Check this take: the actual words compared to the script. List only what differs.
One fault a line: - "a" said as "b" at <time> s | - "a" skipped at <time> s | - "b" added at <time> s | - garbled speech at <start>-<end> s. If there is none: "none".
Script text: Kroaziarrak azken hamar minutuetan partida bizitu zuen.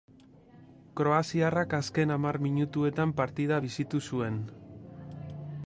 none